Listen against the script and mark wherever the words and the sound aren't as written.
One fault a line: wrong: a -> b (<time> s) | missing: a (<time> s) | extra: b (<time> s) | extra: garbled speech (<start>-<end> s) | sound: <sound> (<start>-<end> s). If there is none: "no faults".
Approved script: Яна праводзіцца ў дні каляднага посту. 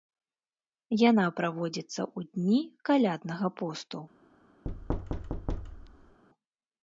sound: thud (4.6-6.2 s)